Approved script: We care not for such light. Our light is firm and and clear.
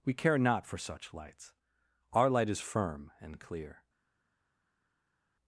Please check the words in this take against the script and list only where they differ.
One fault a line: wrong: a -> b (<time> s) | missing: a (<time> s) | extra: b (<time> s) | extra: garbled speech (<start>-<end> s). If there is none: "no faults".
wrong: light -> lights (1.1 s)
missing: and (3.4 s)